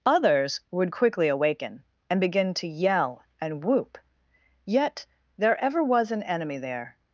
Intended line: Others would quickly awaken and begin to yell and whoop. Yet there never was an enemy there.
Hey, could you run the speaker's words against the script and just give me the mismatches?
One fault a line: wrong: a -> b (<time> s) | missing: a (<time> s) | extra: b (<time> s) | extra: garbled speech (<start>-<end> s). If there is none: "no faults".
wrong: never -> ever (5.6 s)